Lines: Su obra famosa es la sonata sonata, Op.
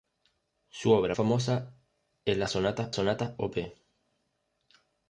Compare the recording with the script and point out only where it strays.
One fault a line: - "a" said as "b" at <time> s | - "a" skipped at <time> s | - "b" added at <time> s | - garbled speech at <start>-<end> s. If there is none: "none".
none